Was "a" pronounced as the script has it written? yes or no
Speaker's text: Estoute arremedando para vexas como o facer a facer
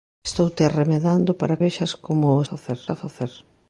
yes